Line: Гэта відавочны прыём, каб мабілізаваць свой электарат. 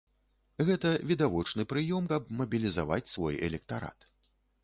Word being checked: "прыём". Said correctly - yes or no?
yes